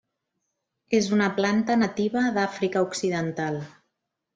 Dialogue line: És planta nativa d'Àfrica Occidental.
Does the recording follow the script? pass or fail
fail